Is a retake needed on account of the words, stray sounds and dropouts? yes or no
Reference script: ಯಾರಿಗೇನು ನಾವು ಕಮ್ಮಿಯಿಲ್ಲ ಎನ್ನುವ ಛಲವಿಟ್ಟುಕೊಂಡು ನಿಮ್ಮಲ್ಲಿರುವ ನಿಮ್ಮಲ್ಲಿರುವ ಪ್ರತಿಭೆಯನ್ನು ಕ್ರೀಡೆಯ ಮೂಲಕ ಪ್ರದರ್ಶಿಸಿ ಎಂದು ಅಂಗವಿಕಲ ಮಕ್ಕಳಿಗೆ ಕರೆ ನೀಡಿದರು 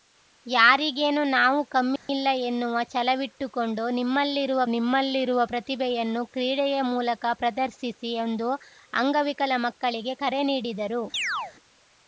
yes